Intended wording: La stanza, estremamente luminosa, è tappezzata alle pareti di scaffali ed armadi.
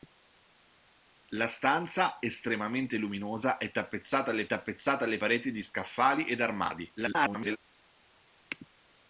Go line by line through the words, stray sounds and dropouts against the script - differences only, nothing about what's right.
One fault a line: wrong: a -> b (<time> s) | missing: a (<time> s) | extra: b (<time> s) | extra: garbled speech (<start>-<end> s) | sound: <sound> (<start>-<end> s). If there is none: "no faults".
extra: tappezzata alle (4.4 s)
extra: garbled speech (7.0-7.6 s)